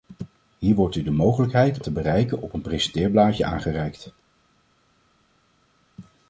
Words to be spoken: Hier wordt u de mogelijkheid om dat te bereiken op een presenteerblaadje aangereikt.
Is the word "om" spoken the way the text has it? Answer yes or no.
no